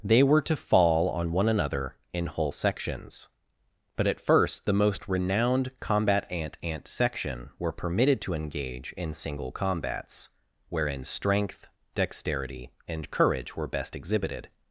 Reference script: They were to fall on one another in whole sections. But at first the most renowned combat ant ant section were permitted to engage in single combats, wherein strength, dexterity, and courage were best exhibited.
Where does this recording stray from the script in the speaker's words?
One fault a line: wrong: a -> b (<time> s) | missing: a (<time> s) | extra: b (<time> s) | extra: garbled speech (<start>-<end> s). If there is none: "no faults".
no faults